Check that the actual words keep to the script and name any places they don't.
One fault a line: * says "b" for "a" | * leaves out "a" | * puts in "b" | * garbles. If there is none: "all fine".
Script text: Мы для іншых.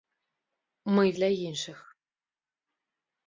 all fine